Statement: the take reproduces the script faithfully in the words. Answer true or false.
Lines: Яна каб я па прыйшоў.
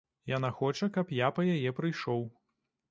false